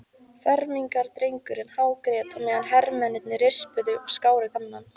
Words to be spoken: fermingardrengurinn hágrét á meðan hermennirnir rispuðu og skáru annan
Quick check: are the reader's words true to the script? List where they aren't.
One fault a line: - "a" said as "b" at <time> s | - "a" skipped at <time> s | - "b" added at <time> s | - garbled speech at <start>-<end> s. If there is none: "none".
none